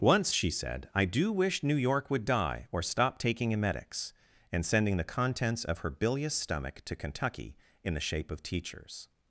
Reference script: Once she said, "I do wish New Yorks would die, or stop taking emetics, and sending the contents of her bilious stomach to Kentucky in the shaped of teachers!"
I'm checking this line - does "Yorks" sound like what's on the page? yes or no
no